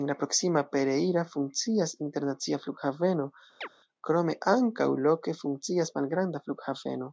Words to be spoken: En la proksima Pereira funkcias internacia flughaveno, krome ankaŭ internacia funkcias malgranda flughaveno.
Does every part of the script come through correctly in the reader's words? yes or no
no